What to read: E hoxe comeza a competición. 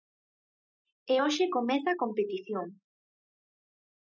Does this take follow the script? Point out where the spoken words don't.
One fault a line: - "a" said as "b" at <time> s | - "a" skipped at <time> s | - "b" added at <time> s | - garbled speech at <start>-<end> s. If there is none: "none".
none